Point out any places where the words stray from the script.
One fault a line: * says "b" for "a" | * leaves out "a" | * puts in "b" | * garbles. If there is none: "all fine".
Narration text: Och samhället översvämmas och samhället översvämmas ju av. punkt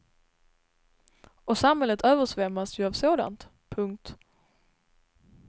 * leaves out "och samhället översvämmas"
* puts in "sådant"